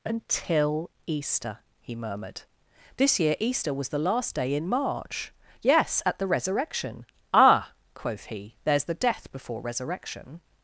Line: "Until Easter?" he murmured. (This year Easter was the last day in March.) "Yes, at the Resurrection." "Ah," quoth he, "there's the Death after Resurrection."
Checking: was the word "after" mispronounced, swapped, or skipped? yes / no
yes